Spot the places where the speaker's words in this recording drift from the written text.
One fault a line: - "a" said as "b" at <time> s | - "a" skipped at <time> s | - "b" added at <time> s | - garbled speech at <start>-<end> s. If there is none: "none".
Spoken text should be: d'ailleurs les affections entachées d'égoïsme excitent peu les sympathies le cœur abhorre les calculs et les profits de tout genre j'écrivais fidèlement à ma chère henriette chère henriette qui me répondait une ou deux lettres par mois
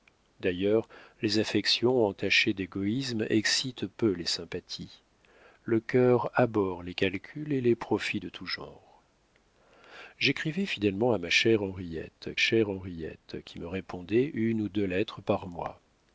none